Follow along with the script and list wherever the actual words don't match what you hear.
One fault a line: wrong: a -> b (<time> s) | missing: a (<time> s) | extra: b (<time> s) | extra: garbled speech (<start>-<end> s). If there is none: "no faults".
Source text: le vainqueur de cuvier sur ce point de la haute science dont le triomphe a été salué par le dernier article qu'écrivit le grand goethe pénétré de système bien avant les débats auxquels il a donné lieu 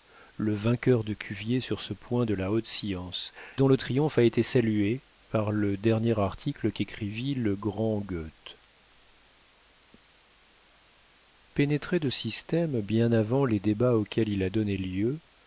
no faults